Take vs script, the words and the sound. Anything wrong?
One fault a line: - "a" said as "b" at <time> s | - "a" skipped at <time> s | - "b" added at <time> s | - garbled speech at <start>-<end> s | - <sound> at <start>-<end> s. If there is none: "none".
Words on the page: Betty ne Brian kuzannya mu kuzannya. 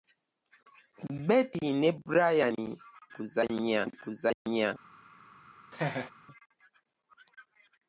- dropout at 4.3-4.5 s
- laugh at 5.7-6.1 s